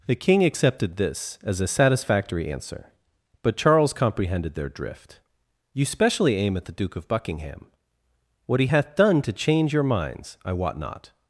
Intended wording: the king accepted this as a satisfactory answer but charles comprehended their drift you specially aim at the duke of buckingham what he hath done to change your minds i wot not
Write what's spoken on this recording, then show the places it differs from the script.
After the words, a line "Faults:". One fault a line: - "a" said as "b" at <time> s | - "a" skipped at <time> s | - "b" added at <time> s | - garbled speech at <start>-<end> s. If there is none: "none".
the king accepted this as a satisfactory answer but charles comprehended their drift you specially aim at the duke of buckingham what he hath done to change your minds i wot not
Faults:
none